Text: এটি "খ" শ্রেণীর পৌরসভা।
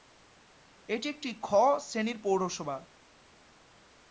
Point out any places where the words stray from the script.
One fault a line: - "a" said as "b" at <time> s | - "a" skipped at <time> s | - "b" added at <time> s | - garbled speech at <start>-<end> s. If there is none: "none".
- "একটি" added at 1.1 s